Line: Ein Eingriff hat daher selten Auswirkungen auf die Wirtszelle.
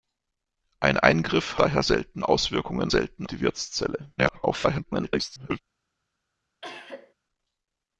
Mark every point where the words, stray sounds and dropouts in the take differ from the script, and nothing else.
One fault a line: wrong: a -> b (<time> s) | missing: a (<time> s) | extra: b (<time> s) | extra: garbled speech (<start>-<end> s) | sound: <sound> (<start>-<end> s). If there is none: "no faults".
missing: hat (1.6 s)
wrong: auf -> selten (2.9 s)
extra: garbled speech (4.2-5.6 s)
sound: cough (6.6-7.1 s)